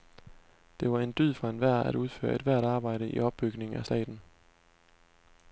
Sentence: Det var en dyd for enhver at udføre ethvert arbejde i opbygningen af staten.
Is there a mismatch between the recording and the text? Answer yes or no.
no